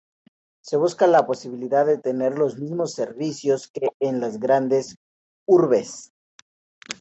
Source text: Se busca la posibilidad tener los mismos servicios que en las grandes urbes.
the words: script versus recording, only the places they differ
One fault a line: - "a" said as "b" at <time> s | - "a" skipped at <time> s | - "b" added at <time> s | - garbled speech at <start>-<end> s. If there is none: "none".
- "de" added at 1.9 s